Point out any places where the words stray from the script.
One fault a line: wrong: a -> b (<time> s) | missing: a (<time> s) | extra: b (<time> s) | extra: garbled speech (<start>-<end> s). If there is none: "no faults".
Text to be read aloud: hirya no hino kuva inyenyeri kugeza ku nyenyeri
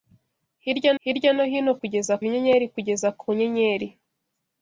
extra: hirya (1.0 s)
wrong: kuva -> kugeza (1.8 s)